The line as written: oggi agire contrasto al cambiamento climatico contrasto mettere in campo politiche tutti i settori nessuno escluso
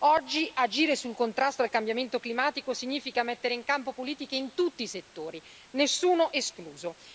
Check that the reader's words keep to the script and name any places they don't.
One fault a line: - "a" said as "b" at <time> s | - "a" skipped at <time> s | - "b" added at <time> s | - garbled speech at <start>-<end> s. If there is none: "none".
- "sul" added at 0.9 s
- "contrasto" said as "significa" at 2.7 s
- "in" added at 4.3 s